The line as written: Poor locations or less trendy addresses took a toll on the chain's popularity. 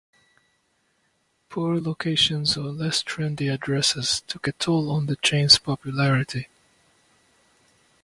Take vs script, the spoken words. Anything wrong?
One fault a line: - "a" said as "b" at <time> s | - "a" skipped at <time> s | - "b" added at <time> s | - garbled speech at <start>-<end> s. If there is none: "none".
none